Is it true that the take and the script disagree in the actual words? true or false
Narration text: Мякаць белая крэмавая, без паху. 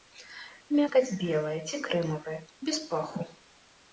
true